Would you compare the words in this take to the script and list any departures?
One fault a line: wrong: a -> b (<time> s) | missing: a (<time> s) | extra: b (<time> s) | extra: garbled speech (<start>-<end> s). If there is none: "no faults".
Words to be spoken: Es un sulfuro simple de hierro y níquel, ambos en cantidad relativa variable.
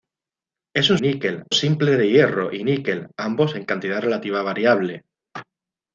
wrong: sulfuro -> níquel (1.0 s)